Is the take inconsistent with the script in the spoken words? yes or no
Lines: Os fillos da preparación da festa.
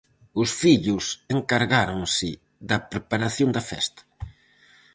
yes